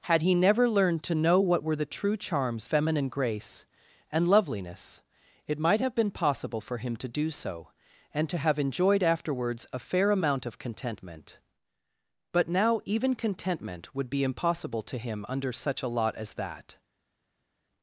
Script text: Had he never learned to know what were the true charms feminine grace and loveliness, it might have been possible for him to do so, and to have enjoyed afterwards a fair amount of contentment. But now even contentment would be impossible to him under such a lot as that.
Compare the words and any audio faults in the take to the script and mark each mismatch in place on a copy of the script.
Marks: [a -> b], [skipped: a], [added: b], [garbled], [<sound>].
Had he never learned to know what were the true charms feminine grace and loveliness, it might have been possible for him to do so, and to have enjoyed afterwards a fair amount of contentment. But now even contentment would be impossible to him under such a lot as that.